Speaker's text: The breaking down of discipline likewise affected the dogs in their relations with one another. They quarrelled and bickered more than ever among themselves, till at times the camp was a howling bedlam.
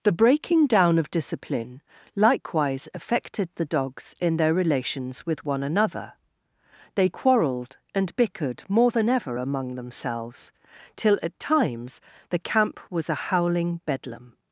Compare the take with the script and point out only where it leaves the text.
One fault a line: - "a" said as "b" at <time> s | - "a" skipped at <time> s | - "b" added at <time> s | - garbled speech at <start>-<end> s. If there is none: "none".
none